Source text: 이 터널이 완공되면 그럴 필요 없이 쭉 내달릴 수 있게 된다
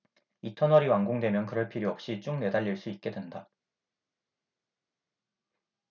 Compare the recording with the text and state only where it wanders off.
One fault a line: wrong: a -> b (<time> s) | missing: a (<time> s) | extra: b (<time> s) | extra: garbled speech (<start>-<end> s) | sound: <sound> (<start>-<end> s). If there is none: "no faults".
no faults